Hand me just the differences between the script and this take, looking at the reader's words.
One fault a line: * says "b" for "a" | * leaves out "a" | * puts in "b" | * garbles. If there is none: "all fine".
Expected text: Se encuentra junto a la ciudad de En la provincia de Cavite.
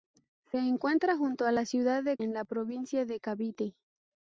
all fine